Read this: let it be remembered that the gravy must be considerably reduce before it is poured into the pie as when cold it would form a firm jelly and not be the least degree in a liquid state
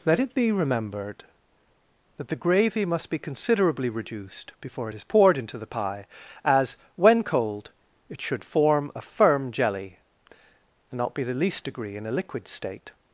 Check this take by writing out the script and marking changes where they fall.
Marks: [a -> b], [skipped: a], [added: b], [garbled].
let it be remembered that the gravy must be considerably [reduce -> reduced] before it is poured into the pie as when cold it [would -> should] form a firm jelly and not be the least degree in a liquid state